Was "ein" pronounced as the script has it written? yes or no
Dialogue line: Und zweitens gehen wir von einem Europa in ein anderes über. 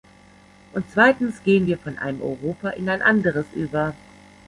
yes